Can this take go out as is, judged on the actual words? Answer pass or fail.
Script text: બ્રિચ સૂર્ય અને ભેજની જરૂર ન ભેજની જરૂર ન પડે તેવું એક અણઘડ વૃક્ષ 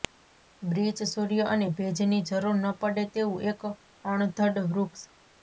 fail